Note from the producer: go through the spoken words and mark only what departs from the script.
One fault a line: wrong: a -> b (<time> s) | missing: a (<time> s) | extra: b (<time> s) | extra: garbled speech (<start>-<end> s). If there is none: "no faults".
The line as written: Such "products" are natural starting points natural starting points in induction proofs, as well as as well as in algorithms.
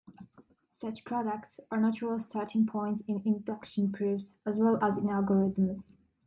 missing: natural starting points (3.0 s)
missing: as well as (5.0 s)